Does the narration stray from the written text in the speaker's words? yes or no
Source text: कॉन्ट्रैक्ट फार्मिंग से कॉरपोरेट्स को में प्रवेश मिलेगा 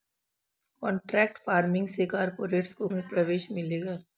no